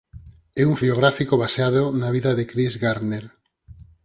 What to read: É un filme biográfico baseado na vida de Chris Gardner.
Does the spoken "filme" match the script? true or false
false